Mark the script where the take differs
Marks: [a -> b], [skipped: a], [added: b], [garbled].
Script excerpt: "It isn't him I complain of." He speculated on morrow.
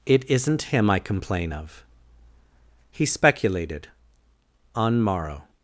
"It isn't him I complain of." He speculated on morrow.